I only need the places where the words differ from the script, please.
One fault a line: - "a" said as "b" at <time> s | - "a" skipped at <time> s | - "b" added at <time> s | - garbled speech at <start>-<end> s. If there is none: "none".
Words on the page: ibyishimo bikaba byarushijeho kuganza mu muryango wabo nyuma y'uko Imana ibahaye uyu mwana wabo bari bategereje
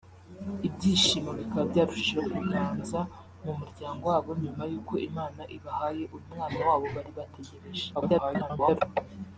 - garbled speech at 7.9-8.8 s